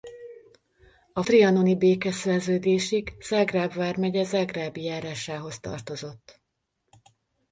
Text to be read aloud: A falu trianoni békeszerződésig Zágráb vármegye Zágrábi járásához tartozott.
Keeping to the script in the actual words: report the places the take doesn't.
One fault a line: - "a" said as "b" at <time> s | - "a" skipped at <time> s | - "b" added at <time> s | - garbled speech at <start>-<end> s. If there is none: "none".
- "falu" skipped at 1.2 s